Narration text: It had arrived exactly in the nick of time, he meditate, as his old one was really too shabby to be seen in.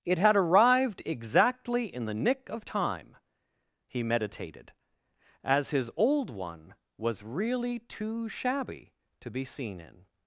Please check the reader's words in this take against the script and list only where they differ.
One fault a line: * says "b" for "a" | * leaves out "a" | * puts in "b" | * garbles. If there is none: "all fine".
* says "meditated" for "meditate"